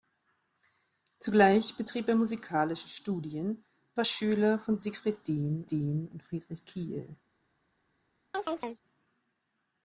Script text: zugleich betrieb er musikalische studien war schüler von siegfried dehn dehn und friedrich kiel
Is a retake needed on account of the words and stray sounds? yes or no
yes